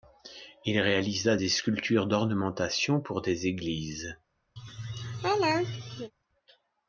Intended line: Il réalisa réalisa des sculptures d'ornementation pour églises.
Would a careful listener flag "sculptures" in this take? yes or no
no